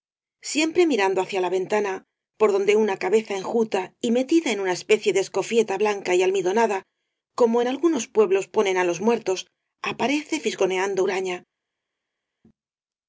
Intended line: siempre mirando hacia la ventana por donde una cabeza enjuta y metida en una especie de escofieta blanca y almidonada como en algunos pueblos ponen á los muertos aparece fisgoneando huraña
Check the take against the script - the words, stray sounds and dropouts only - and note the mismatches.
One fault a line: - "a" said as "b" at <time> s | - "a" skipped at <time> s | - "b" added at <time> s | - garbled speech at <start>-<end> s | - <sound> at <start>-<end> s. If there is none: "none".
none